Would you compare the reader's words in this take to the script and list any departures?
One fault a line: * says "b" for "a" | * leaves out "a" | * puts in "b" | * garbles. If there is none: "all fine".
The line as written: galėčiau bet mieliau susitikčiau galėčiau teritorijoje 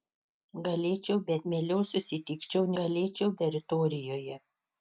all fine